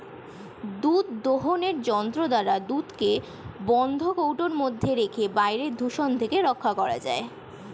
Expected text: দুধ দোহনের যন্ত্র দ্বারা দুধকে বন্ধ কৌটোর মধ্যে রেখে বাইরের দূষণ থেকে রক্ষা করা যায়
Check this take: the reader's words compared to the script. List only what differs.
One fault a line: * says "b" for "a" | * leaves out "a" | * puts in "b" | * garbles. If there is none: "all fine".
all fine